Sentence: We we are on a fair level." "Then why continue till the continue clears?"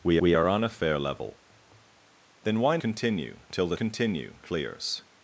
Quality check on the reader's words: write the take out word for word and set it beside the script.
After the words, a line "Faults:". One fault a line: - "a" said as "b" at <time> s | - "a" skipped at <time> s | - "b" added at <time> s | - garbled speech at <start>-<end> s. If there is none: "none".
We we are on a fair level." "Then why continue till the continue clears?"
Faults:
none